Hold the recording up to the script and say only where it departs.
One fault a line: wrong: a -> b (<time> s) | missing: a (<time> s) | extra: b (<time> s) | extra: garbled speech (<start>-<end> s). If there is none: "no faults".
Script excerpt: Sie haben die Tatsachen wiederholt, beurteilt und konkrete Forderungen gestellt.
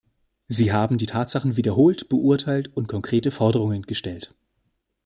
no faults